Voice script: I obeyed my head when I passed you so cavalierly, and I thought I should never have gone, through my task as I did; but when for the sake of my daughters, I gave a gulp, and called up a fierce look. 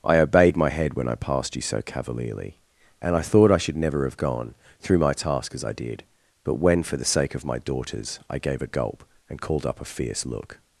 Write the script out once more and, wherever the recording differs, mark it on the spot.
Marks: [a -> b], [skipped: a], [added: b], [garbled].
I obeyed my head when I passed you so cavalierly, and I thought I should never have gone, through my task as I did; but when for the sake of my daughters, I gave a gulp, and called up a fierce look.